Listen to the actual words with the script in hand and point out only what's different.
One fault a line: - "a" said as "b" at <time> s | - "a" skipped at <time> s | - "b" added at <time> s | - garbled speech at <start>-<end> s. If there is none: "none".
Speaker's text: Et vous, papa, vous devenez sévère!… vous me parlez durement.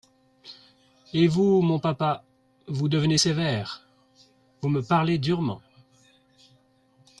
- "mon" added at 1.6 s